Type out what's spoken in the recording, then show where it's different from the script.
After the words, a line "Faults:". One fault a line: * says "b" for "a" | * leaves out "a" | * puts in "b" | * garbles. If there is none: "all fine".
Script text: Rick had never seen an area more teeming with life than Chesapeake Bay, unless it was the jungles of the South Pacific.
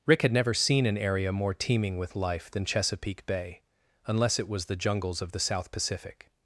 Rick had never seen an area more teeming with life than Chesapeake Bay, unless it was the jungles of the South Pacific.
Faults:
all fine